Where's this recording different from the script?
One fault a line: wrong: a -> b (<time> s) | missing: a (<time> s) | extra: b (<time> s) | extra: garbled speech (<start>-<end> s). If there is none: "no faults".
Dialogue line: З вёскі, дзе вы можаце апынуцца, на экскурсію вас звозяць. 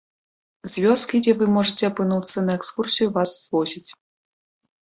no faults